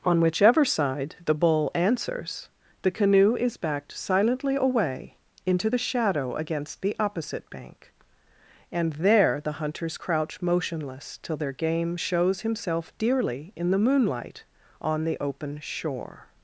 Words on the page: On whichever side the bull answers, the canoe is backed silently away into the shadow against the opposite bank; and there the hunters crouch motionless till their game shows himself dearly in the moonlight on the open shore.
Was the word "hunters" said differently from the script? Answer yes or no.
no